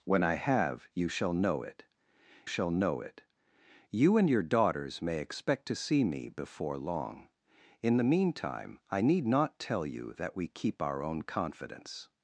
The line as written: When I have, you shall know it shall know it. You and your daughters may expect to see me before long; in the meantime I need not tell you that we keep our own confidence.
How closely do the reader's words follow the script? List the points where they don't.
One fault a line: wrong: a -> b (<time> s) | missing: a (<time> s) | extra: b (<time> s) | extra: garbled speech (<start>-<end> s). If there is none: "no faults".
no faults